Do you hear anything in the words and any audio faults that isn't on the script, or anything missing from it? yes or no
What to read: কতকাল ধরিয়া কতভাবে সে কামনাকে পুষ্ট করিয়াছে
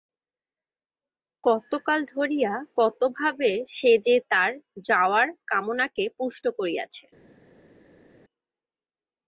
yes